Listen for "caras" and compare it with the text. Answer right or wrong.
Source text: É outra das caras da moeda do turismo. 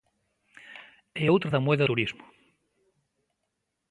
wrong